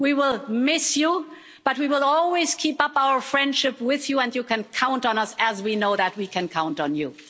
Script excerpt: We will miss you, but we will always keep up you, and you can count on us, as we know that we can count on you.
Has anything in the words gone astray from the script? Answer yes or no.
yes